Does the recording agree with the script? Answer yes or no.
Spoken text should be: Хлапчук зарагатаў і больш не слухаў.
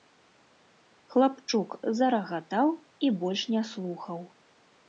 yes